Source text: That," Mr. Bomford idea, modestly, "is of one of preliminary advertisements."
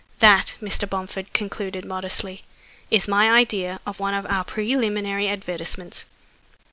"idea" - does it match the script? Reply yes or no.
no